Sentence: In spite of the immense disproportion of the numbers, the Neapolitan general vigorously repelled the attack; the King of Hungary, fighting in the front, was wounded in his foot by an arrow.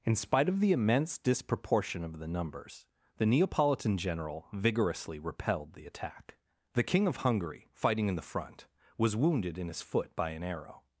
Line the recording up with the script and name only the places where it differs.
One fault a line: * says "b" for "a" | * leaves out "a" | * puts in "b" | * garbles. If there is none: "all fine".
all fine